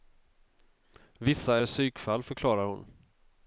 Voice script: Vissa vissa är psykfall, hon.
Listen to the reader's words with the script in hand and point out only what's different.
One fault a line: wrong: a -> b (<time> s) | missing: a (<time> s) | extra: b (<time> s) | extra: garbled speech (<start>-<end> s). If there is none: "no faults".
missing: vissa (1.6 s)
extra: förklarar (2.2 s)